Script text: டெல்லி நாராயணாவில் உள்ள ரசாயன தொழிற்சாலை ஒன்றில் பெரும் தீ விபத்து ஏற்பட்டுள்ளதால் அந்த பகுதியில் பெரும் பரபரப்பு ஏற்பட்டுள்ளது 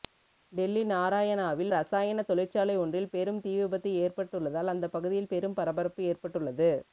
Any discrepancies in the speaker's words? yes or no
yes